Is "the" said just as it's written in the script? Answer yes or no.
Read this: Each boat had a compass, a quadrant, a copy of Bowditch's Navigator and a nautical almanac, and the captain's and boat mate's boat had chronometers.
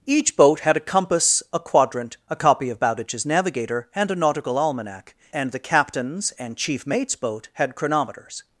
yes